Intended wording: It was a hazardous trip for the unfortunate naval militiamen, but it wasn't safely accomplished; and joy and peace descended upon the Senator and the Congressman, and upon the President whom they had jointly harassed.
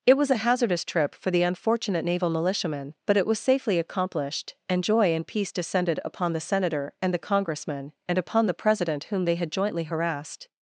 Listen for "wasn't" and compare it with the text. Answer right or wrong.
wrong